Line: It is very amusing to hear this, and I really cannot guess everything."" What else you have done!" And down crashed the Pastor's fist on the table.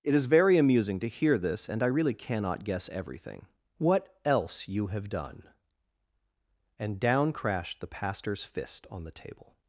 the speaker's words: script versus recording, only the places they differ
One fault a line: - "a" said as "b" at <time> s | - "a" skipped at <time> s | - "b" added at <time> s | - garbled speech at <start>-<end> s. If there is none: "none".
none